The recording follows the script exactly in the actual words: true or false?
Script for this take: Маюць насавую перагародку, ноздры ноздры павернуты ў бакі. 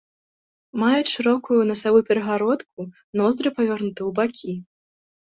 false